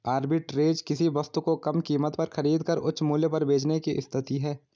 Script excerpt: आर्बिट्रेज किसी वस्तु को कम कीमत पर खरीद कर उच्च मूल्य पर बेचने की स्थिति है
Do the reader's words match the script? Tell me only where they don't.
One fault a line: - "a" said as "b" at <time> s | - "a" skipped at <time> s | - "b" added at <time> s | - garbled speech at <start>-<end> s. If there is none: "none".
none